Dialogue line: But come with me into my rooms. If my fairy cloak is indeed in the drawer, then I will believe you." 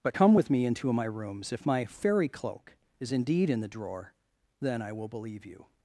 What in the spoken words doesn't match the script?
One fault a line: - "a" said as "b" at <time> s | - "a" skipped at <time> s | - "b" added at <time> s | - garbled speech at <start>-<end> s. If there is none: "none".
none